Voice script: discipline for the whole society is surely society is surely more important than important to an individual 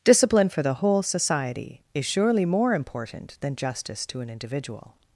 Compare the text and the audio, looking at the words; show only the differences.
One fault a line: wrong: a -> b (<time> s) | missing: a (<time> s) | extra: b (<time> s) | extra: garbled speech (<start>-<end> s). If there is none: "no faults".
missing: society is surely (2.4 s)
wrong: important -> justice (3.5 s)